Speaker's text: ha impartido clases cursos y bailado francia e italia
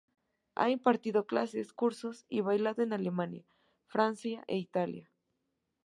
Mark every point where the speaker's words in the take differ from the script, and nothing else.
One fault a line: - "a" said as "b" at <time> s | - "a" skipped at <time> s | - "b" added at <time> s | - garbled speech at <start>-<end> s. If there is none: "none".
- "en alemania" added at 2.8 s